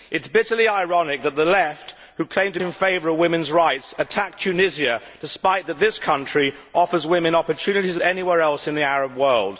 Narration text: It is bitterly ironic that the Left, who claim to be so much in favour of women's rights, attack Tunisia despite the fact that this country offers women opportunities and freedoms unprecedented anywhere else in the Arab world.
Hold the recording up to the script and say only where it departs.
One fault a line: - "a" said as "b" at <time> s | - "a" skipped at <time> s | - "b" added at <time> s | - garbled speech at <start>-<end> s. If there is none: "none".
- "be so much" skipped at 2.6 s
- "and freedoms unprecedented" skipped at 8.0 s